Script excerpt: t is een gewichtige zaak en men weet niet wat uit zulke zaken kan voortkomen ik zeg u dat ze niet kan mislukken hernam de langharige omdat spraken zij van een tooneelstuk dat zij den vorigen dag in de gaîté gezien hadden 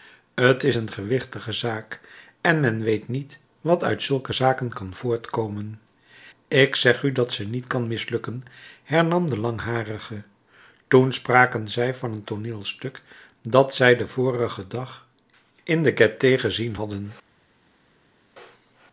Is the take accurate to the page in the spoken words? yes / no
no